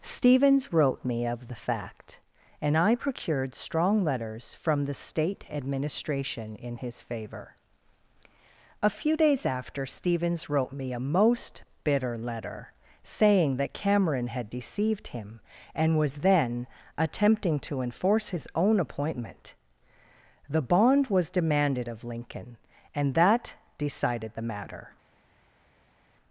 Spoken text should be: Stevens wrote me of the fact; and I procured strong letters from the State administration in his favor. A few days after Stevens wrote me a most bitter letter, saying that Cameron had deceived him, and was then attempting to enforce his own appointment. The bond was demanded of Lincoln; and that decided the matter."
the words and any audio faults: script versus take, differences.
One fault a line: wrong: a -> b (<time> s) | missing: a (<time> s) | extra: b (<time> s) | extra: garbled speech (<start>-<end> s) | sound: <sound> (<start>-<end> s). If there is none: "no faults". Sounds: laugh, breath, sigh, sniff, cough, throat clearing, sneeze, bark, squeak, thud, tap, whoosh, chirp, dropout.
no faults